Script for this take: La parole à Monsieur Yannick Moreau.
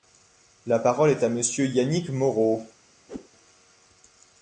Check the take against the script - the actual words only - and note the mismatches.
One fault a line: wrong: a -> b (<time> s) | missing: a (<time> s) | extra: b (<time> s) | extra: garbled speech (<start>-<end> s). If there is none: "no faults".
extra: est (1.1 s)